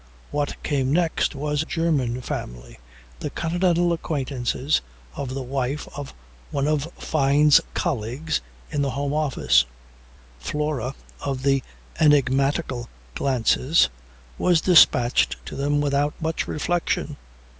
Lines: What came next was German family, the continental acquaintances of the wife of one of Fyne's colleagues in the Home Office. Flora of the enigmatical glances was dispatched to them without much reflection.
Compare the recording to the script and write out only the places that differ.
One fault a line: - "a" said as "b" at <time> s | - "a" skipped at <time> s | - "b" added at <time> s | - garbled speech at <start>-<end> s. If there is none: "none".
none